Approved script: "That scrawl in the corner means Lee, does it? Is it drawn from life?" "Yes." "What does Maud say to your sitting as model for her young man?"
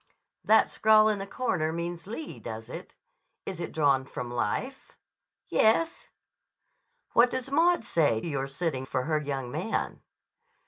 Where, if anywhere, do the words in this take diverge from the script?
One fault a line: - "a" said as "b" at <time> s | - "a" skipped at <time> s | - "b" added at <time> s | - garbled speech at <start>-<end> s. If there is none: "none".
- "to" skipped at 8.2 s
- "as model" skipped at 8.9 s